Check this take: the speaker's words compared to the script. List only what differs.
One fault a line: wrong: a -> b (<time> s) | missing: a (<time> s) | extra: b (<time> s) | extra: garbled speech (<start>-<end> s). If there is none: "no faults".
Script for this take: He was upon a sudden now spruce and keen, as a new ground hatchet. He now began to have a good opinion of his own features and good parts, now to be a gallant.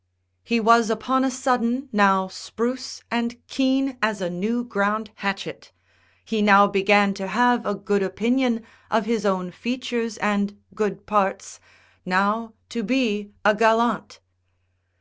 no faults